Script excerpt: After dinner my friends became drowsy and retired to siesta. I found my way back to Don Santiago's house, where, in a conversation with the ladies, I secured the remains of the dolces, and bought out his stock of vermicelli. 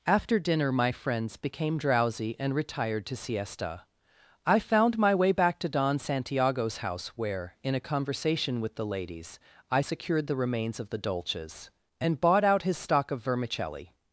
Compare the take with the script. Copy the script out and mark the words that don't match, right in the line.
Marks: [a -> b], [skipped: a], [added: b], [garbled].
After dinner my friends became drowsy and retired to siesta. I found my way back to Don Santiago's house, where, in a conversation with the ladies, I secured the remains of the dolces, and bought out his stock of vermicelli.